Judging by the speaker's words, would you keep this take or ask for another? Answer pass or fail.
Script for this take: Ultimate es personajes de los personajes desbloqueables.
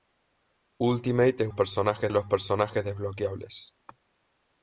pass